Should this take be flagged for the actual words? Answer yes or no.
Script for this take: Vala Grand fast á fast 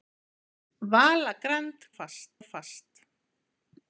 no